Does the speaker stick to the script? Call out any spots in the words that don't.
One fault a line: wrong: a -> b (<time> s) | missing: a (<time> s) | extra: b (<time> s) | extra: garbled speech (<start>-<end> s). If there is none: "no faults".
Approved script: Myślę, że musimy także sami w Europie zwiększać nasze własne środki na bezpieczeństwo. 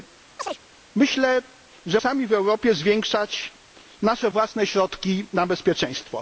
missing: musimy także (2.0 s)